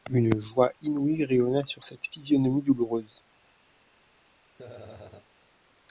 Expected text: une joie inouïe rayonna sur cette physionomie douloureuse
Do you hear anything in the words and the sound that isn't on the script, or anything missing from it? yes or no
yes